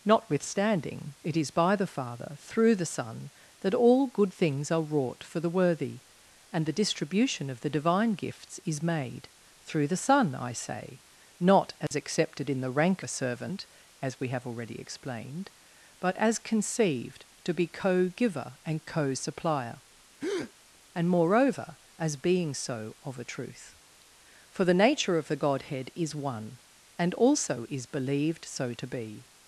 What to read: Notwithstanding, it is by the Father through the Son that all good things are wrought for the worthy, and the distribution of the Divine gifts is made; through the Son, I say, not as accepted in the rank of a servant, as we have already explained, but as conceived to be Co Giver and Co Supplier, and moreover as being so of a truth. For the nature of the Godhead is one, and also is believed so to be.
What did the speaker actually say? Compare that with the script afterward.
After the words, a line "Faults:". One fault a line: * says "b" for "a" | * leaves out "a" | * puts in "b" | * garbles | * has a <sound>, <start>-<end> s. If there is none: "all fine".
Notwithstanding, it is by the Father through the Son that all good things are wrought for the worthy, and the distribution of the Divine gifts is made; through the Son, I say, not as accepted in the rank a servant, as we have already explained, but as conceived to be Co Giver and Co Supplier, and moreover as being so of a truth. For the nature of the Godhead is one, and also is believed so to be.
Faults:
* has a dropout, 11.9-11.9 s
* leaves out "of"
* has a breath, 20.2-20.5 s